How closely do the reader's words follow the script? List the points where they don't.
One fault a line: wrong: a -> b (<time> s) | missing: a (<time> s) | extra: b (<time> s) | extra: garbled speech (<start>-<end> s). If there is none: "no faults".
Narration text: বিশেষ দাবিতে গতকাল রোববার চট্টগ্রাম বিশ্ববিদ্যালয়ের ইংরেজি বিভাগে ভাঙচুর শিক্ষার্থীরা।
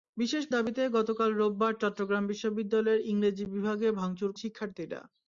no faults